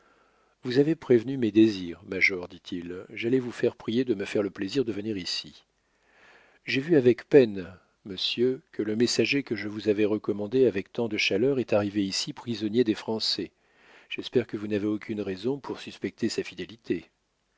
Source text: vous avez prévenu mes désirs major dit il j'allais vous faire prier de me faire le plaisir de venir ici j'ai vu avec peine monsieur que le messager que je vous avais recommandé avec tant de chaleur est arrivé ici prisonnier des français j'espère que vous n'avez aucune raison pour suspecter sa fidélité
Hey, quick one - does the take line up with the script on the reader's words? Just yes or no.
yes